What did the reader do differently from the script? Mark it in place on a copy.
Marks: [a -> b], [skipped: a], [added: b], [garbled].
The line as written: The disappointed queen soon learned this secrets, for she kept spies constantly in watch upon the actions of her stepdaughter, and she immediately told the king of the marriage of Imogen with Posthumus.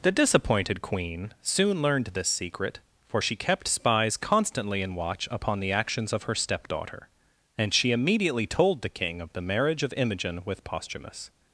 The disappointed queen soon learned this [secrets, -> secret] for she kept spies constantly in watch upon the actions of her stepdaughter, and she immediately told the king of the marriage of Imogen with Posthumus.